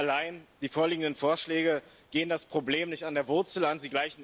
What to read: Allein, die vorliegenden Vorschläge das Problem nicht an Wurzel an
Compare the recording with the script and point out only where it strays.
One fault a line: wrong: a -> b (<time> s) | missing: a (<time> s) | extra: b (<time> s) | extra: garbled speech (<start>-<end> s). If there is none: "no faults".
extra: gehen (2.1 s)
extra: der (3.1 s)